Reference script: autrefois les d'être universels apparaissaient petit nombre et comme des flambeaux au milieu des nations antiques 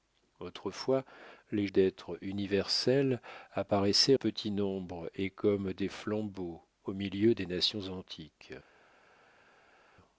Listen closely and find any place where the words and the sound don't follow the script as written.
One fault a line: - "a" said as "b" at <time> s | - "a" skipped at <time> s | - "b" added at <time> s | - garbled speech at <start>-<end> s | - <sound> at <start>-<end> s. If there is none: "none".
none